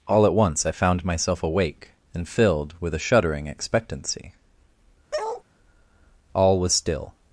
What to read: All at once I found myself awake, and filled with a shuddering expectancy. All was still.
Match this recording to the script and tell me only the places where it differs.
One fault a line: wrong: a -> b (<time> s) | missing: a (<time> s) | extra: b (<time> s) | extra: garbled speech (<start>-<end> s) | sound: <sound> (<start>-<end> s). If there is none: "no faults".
sound: bark (5.1-5.4 s)